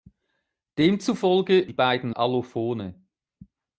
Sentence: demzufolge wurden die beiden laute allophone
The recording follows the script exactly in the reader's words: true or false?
false